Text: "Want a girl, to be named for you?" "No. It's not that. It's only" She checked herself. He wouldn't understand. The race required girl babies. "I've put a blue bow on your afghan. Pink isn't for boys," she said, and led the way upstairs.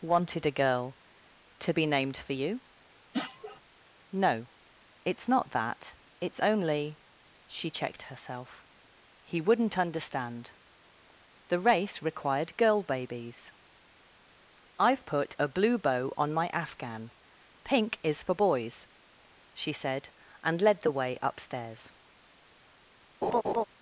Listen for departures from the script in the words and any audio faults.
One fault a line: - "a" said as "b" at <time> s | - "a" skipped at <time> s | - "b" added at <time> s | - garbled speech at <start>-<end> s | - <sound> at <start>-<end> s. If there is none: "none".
- "Want" said as "Wanted" at 0.0 s
- sniff at 3.1-3.6 s
- "your" said as "my" at 16.3 s
- "isn't" said as "is" at 18.0 s
- laugh at 23.2-23.6 s